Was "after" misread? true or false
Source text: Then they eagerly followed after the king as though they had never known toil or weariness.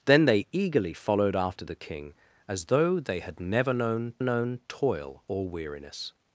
false